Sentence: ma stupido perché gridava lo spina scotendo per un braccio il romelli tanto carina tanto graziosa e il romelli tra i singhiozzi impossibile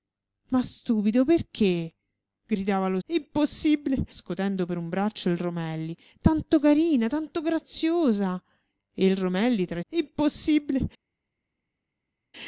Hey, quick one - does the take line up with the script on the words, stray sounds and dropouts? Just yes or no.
no